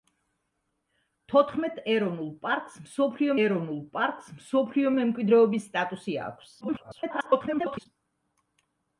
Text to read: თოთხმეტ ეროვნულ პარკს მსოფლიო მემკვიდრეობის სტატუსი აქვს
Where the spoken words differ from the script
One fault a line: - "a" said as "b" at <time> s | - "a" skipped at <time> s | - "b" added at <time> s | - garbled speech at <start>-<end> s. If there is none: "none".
- "ეროვნულ პარკს მსოფლიო" added at 3.5 s
- garbled speech at 6.6-7.9 s